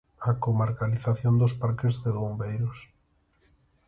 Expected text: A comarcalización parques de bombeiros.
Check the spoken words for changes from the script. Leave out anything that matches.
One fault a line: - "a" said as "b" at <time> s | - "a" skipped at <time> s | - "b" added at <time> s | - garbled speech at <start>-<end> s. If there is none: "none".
- "dos" added at 1.4 s